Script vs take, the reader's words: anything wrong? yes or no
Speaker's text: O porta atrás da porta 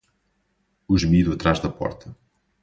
yes